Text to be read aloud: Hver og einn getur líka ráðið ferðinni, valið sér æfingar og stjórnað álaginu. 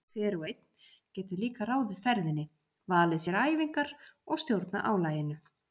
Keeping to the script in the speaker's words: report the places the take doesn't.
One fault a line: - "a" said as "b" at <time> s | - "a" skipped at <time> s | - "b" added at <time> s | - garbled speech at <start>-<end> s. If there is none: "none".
none